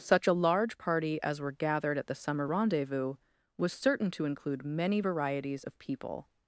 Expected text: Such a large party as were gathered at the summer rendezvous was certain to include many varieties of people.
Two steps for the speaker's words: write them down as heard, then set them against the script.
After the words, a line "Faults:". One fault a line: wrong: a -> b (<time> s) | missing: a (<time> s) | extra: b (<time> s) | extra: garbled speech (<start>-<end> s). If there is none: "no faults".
Such a large party as were gathered at the summer rendezvous was certain to include many varieties of people.
Faults:
no faults